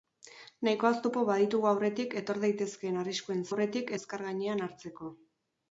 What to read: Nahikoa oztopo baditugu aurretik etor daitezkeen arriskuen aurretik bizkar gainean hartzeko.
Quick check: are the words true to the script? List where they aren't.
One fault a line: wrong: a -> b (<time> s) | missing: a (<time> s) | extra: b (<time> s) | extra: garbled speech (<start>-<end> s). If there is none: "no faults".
no faults